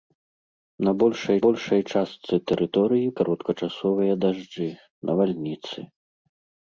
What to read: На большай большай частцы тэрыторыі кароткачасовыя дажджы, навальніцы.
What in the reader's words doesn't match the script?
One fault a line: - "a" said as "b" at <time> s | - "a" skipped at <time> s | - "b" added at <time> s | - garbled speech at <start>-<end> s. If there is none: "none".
none